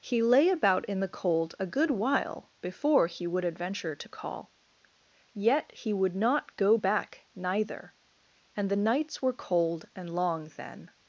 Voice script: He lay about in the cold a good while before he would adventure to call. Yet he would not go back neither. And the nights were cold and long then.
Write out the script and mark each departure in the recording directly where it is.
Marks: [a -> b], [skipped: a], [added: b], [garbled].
He lay about in the cold a good while before he would adventure to call. Yet he would not go back neither. And the nights were cold and long then.